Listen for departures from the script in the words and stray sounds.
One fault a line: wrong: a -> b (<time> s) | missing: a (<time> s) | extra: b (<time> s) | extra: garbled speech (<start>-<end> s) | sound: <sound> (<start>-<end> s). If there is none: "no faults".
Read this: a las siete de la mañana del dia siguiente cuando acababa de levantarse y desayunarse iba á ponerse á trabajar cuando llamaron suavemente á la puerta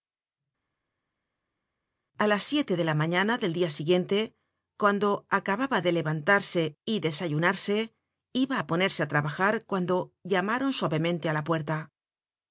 no faults